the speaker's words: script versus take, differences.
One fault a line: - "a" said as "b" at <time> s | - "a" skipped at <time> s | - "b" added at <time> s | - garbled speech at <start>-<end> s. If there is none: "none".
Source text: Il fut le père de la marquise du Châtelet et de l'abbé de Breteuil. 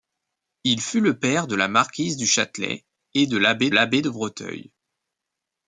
- "l'abbé" added at 3.7 s